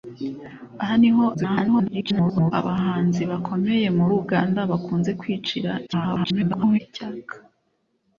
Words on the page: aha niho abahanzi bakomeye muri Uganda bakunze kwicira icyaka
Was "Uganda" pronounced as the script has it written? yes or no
yes